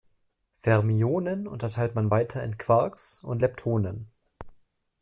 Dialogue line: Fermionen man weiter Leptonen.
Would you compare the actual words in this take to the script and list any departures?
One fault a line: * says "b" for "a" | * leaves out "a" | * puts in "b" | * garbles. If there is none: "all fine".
* puts in "unterteilt"
* puts in "in Quarks und"